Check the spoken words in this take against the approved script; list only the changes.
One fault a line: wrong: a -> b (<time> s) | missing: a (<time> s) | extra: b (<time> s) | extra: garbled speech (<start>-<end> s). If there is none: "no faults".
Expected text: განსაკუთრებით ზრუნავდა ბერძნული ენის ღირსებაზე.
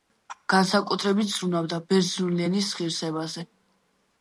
no faults